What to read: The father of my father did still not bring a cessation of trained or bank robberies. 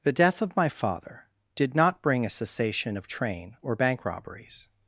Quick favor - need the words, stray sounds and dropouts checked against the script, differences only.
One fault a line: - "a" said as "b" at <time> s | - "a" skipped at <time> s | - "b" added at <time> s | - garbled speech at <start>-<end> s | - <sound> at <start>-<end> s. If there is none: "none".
- "father" said as "death" at 0.1 s
- "still" skipped at 1.7 s
- "trained" said as "train" at 3.1 s